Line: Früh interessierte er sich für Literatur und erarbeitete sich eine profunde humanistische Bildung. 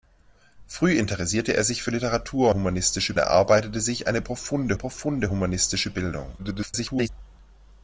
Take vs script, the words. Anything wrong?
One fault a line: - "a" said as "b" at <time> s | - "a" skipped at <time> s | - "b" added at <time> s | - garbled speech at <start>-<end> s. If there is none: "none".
- "und" said as "humanistische" at 2.5 s
- "profunde" added at 4.7 s
- garbled speech at 6.4-7.1 s